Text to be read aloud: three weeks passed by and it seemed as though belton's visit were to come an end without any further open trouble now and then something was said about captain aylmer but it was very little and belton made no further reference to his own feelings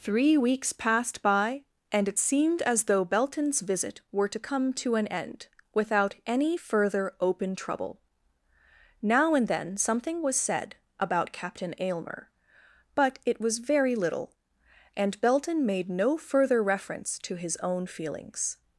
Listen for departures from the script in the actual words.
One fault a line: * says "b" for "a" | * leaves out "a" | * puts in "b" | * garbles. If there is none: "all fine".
* puts in "to"